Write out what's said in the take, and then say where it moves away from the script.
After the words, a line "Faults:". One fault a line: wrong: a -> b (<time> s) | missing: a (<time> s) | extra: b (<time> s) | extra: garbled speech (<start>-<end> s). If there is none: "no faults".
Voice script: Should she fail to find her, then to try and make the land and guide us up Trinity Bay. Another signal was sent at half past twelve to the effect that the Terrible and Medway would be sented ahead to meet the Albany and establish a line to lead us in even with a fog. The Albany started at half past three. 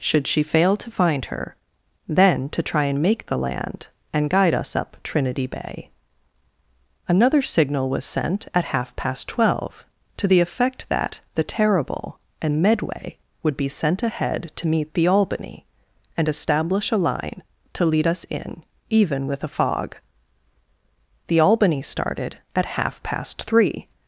Should she fail to find her, then to try and make the land and guide us up Trinity Bay. Another signal was sent at half past twelve to the effect that the Terrible and Medway would be sent ahead to meet the Albany and establish a line to lead us in even with a fog. The Albany started at half past three.
Faults:
wrong: sented -> sent (13.7 s)